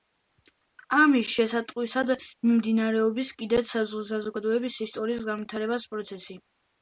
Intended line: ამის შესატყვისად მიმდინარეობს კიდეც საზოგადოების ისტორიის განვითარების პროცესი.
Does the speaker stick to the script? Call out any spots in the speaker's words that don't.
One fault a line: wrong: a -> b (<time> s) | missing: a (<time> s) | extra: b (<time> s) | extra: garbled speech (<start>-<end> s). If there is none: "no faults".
no faults